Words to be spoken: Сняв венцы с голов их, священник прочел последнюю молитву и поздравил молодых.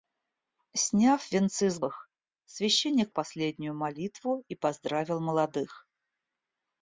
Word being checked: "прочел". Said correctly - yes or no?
no